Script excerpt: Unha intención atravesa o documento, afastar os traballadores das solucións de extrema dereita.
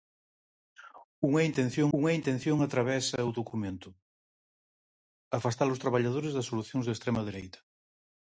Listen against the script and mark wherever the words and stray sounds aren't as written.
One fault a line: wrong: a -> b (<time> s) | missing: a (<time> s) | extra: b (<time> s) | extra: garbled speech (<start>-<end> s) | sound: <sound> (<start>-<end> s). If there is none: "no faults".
extra: unha intención (2.0 s)